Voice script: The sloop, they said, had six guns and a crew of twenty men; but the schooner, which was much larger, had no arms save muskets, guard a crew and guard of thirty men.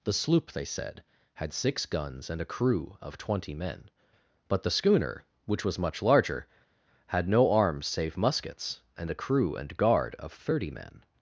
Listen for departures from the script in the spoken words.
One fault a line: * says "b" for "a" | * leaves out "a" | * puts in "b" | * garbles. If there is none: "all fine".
* says "and" for "guard"